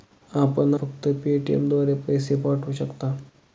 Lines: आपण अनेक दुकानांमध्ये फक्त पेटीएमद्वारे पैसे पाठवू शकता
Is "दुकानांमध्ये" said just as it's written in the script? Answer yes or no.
no